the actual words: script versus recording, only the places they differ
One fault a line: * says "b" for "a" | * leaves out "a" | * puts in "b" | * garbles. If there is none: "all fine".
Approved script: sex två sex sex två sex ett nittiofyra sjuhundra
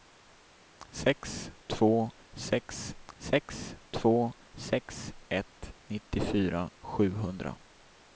all fine